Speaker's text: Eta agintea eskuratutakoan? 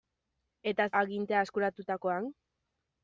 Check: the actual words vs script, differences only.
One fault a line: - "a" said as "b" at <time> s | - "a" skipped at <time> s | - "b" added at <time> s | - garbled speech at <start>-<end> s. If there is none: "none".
none